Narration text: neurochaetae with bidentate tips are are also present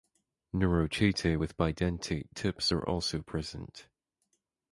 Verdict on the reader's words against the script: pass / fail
fail